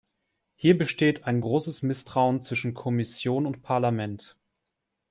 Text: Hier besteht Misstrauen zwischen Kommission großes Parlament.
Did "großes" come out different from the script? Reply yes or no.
yes